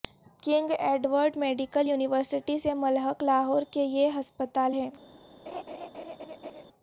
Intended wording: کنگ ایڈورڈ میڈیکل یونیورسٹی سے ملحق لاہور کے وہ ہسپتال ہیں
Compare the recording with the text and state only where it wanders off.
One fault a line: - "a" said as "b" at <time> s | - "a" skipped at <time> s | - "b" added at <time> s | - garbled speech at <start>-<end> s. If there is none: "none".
- "وہ" said as "یہ" at 3.8 s